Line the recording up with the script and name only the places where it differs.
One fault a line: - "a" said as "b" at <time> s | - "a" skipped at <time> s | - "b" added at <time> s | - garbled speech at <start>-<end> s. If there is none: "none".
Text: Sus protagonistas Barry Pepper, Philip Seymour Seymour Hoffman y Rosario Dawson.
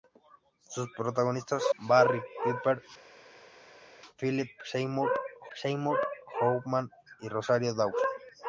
none